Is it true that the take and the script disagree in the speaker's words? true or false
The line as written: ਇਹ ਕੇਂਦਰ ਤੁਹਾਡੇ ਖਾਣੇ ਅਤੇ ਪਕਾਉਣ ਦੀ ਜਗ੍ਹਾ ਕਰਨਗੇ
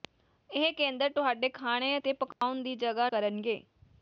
false